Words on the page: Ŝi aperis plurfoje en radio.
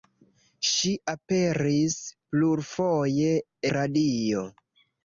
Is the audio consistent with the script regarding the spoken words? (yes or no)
no